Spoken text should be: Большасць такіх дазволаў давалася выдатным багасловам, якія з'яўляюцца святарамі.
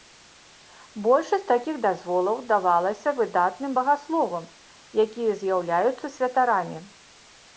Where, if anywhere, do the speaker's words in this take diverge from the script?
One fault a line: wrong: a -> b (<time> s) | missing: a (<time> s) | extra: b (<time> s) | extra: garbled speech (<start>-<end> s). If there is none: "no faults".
no faults